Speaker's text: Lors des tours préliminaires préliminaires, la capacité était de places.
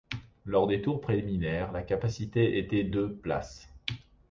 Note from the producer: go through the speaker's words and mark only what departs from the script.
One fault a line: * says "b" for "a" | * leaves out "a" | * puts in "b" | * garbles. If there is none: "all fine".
* leaves out "préliminaires"